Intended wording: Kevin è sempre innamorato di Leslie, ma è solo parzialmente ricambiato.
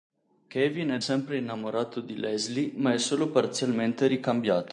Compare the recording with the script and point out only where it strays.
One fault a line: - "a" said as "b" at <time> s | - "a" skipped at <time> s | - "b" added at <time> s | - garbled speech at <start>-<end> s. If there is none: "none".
none